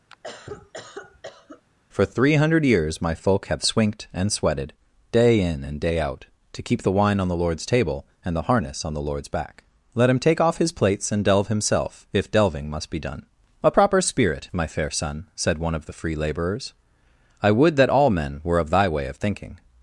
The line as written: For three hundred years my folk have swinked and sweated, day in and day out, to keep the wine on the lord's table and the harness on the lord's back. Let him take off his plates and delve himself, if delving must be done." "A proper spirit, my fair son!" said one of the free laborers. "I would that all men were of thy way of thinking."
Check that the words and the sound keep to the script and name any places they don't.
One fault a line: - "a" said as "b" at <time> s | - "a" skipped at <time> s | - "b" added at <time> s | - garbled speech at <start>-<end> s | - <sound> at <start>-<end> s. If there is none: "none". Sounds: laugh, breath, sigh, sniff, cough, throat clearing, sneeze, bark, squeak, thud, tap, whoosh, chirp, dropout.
- cough at 0.1-1.6 s